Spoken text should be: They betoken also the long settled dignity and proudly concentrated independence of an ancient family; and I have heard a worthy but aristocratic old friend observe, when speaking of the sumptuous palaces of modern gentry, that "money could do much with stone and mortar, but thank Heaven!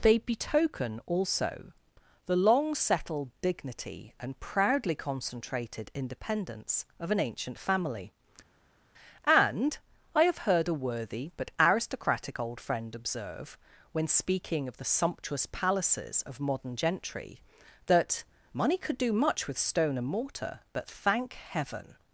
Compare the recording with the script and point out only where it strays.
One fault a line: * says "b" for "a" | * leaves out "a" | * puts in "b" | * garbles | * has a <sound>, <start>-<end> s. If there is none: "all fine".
all fine